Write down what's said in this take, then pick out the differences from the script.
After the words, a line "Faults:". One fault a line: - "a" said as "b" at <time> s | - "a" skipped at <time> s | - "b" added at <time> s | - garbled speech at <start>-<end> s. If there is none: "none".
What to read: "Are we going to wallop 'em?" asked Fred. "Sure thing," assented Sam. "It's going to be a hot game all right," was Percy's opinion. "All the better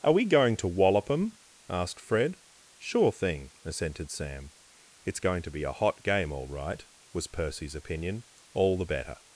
"Are we going to wallop 'em?" asked Fred. "Sure thing," assented Sam. "It's going to be a hot game all right," was Percy's opinion. "All the better
Faults:
none